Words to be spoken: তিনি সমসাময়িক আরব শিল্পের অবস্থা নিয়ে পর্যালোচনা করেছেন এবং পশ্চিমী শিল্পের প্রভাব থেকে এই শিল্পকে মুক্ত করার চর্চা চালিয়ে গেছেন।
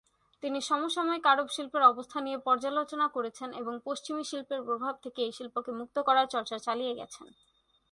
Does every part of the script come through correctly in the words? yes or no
yes